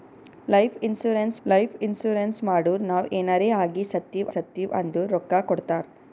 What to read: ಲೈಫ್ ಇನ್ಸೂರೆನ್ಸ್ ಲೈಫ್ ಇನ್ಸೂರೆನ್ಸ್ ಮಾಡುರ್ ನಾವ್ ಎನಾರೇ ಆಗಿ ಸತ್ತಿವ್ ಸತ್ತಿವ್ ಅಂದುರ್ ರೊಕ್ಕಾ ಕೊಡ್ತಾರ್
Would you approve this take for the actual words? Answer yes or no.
yes